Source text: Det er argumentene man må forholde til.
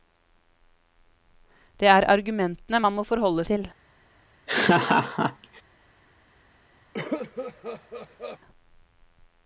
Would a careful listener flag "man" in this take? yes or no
no